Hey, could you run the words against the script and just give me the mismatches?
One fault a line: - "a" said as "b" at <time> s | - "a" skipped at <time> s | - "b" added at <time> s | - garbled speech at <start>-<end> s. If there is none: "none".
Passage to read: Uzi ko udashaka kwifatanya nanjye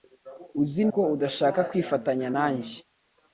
none